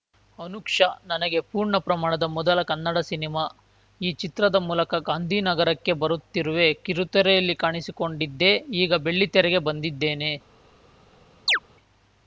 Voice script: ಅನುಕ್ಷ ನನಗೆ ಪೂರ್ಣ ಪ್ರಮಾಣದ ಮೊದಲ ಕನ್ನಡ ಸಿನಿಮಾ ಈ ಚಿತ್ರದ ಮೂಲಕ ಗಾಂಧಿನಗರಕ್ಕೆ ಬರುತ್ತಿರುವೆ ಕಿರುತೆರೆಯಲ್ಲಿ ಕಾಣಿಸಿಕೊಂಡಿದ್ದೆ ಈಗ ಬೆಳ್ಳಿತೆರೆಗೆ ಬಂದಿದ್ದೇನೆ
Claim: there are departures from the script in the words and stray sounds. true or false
true